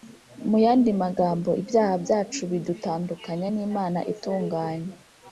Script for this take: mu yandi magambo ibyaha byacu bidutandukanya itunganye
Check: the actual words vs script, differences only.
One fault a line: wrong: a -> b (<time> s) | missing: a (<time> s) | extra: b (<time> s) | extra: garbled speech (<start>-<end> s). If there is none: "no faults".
extra: n'imana (3.5 s)